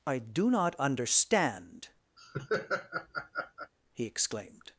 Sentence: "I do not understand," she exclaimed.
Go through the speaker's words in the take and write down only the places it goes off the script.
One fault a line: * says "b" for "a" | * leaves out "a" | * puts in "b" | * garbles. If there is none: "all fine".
* says "he" for "she"